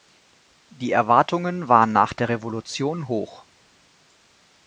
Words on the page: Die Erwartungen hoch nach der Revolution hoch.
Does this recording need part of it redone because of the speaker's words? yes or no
yes